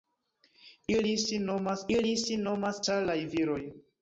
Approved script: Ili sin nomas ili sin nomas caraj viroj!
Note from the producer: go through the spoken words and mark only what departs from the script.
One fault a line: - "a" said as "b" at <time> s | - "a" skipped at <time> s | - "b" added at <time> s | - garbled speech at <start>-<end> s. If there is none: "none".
none